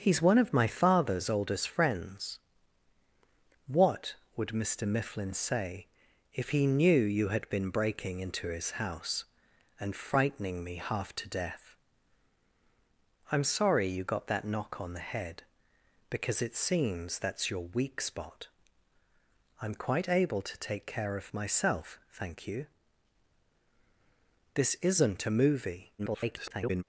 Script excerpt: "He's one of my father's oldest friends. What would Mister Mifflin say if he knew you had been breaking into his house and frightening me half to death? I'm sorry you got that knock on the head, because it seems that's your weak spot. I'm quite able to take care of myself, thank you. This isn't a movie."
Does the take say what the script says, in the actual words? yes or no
no